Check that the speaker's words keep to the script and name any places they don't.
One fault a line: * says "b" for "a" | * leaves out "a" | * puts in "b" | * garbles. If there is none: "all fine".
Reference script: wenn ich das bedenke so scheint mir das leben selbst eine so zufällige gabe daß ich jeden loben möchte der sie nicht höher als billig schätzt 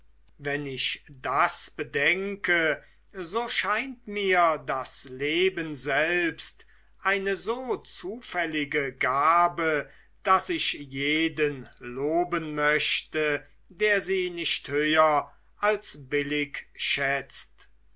all fine